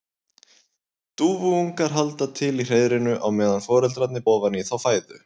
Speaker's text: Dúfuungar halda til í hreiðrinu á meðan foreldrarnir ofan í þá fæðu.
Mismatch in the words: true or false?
false